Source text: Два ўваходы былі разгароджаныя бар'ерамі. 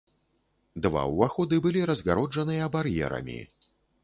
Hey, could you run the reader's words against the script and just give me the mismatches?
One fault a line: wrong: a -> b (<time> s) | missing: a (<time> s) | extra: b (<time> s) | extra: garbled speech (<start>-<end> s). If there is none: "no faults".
no faults